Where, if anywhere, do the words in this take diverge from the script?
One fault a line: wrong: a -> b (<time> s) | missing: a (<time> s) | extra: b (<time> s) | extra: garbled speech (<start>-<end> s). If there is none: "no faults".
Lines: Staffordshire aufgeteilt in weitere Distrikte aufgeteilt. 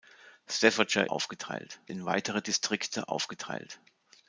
no faults